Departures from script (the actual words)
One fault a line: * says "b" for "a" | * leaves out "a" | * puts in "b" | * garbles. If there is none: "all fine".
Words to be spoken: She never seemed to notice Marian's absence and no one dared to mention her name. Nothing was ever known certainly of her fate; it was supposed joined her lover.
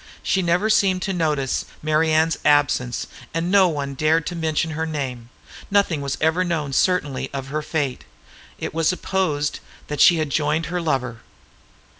* puts in "that she had"